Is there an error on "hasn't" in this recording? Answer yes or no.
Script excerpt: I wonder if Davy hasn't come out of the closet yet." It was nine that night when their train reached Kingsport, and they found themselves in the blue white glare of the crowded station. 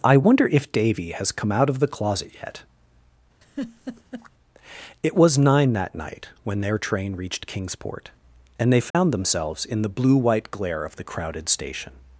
yes